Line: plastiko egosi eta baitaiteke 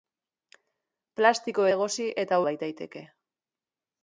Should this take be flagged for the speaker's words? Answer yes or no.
no